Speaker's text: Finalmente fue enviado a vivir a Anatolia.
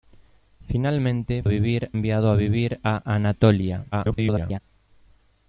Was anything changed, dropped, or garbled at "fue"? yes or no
yes